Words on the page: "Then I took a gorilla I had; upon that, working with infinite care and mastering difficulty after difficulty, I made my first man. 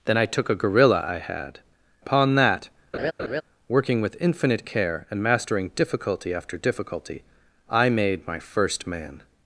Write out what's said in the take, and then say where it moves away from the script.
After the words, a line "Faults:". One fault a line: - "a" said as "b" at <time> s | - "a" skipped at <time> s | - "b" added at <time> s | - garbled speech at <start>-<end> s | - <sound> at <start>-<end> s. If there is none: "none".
"Then I took a gorilla I had; upon that, working with infinite care and mastering difficulty after difficulty, I made my first man.
Faults:
- laugh at 2.9-3.4 s